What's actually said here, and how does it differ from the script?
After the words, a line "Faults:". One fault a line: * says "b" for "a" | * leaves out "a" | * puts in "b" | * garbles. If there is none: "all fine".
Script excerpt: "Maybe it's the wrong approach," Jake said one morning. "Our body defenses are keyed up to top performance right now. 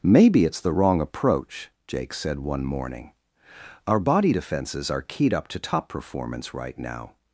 "Maybe it's the wrong approach," Jake said one morning. "Our body defenses are keyed up to top performance right now.
Faults:
all fine